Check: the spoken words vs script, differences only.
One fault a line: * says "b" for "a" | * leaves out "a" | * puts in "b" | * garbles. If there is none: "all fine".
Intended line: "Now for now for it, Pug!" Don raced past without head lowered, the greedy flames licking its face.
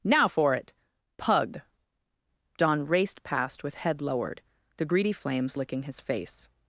* leaves out "now for"
* says "with" for "without"
* says "his" for "its"